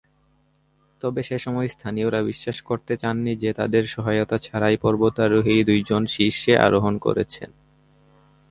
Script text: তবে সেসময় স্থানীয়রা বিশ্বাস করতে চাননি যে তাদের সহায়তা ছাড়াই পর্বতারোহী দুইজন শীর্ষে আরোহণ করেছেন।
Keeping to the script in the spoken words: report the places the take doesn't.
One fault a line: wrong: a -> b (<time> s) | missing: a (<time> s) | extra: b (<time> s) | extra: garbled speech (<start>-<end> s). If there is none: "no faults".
no faults